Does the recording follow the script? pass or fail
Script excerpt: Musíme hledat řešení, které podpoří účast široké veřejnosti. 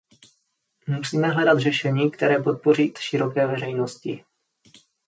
fail